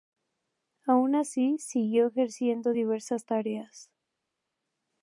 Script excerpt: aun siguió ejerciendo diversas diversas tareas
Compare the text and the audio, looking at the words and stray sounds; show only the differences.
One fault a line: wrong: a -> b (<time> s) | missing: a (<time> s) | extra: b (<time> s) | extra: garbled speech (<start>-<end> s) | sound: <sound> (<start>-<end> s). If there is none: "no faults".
extra: así (1.1 s)
missing: diversas (3.3 s)